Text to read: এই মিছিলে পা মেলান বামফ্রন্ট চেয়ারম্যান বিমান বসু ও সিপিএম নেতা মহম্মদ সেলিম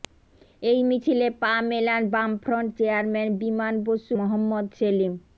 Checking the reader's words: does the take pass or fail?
fail